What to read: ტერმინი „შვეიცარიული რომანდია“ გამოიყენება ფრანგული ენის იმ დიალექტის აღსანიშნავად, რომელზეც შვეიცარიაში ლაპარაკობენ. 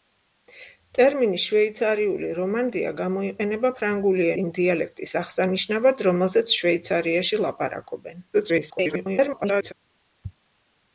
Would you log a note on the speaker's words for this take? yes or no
yes